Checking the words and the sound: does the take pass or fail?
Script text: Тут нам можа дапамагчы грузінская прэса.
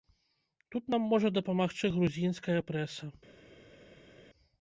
pass